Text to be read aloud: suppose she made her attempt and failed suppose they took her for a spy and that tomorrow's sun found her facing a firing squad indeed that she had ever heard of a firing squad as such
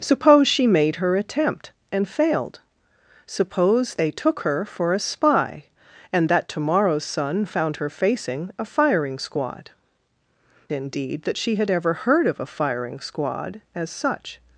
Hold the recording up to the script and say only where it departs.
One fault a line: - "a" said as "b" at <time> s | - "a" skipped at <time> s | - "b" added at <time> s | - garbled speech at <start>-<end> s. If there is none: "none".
none